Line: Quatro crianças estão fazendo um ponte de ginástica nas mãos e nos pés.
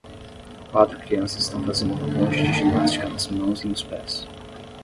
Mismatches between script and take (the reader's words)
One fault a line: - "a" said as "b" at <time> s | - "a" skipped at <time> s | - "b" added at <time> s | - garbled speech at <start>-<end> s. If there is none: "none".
- "um" said as "uma" at 1.9 s